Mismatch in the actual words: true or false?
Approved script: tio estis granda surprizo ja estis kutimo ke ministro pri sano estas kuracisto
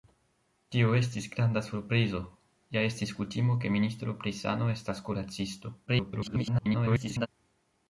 true